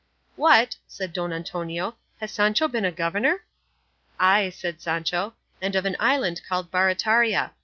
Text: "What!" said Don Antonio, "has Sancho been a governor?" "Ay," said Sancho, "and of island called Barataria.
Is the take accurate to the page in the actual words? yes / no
no